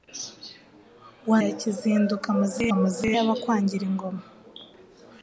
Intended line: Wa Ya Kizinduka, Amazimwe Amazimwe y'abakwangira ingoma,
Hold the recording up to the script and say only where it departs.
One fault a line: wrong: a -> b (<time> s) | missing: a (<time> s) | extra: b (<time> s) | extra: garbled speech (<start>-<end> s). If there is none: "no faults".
no faults